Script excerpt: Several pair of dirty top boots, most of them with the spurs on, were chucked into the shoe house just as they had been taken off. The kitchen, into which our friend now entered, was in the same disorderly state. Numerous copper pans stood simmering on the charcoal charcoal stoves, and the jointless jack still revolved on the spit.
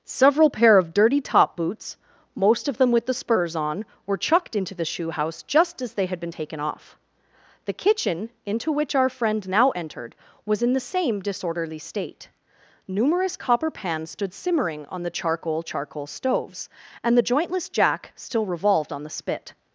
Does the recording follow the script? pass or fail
pass